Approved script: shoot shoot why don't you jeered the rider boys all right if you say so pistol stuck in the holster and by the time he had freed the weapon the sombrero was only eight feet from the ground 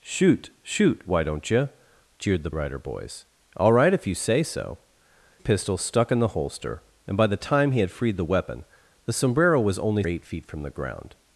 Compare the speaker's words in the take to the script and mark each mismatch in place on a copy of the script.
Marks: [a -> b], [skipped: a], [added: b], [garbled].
shoot shoot why don't you jeered the rider boys all right if you say so pistol stuck in the holster and by the time he had freed the weapon the sombrero was only eight feet from the ground